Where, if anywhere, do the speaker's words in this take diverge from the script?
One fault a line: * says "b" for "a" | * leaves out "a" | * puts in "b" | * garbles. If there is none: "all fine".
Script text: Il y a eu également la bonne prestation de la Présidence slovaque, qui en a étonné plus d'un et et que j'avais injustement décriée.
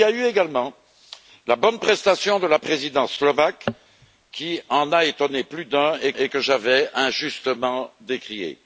all fine